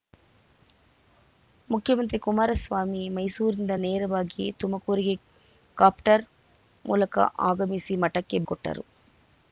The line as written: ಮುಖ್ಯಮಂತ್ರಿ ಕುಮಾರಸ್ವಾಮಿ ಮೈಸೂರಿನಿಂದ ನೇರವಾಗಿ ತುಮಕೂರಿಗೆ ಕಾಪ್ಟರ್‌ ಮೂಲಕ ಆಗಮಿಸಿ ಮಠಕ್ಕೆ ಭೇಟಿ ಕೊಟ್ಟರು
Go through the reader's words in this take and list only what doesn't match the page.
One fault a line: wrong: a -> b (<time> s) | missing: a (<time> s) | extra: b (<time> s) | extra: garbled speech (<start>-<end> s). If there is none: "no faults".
missing: ಭೇಟಿ (8.4 s)